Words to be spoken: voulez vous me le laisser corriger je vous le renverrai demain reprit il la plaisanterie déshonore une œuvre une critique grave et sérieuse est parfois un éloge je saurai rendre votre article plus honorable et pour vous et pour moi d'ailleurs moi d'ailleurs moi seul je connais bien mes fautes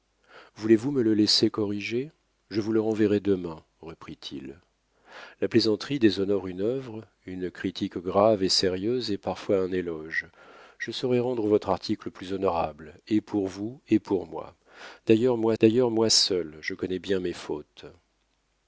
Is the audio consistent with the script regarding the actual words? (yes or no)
yes